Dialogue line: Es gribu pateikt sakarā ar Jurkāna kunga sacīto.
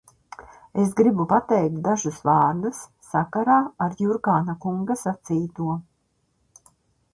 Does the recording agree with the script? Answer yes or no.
no